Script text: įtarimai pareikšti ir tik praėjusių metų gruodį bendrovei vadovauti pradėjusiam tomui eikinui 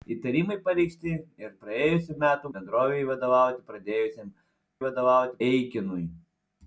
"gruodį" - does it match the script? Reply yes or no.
no